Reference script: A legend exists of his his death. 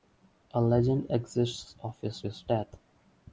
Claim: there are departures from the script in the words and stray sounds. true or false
false